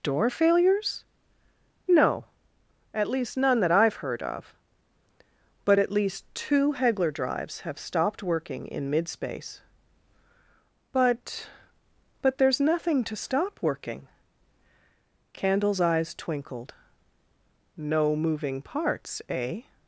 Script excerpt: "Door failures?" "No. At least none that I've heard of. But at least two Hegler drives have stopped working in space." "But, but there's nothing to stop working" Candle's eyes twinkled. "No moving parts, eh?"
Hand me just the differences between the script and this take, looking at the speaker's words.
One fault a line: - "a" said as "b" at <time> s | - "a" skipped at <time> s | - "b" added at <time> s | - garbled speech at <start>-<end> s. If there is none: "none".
- "mid" added at 8.9 s